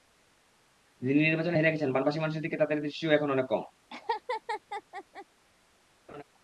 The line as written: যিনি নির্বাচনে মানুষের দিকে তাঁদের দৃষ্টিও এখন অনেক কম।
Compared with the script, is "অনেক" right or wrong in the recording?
right